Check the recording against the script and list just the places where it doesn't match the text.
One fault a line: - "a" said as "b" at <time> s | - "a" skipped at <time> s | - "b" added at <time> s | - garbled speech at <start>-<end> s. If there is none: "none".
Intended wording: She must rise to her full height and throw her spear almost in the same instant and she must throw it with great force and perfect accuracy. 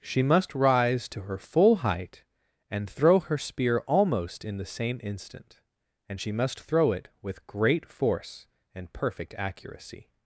none